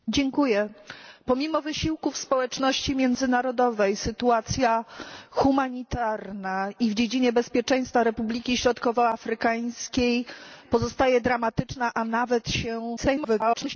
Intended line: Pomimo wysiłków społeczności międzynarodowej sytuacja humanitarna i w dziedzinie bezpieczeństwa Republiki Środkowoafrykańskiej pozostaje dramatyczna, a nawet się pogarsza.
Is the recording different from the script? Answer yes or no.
yes